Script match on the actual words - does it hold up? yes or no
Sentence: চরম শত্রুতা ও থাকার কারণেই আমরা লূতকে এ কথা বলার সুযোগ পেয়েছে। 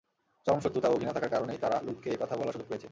no